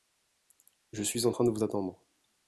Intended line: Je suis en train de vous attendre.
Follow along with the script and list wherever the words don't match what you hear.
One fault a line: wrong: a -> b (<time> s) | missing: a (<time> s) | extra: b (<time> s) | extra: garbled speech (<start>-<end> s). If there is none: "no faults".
no faults